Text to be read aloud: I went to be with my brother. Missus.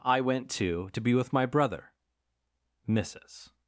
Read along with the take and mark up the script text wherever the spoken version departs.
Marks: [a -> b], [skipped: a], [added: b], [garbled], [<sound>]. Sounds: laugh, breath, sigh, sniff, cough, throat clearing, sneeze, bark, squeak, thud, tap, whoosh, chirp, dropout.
I went to [added: to] be with my brother. Missus.